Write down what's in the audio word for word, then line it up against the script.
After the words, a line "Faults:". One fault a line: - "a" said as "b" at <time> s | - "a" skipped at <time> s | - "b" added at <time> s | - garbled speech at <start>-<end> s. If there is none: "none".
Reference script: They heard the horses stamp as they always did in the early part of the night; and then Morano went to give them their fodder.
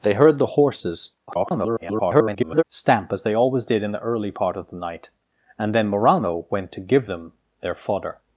They heard the horses [garbled] stamp as they always did in the early part of the night; and then Morano went to give them their fodder.
Faults:
- garbled speech at 1.3-2.6 s